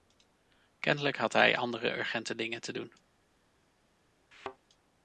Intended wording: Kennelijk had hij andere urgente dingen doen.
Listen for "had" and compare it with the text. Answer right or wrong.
right